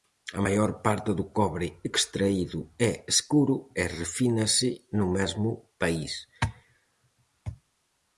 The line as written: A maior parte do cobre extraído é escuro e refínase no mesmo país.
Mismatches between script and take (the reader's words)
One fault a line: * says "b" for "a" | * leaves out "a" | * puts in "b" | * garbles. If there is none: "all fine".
all fine